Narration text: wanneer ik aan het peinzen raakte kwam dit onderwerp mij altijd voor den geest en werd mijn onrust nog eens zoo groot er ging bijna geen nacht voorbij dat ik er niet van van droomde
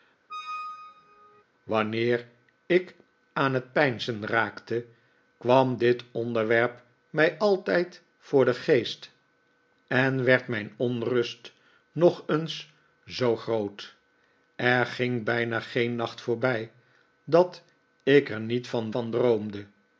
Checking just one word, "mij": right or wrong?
right